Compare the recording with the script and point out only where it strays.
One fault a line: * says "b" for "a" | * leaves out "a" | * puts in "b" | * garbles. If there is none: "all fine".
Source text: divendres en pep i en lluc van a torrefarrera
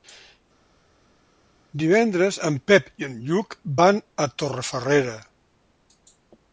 all fine